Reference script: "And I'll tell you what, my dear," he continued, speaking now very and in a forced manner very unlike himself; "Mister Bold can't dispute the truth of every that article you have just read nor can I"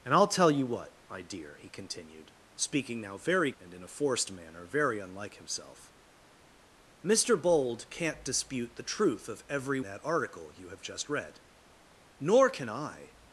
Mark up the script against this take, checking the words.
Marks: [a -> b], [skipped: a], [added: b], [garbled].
"And I'll tell you what, my dear," he continued, speaking now very and in a forced manner very unlike himself; "Mister Bold can't dispute the truth of every that article you have just read nor can I"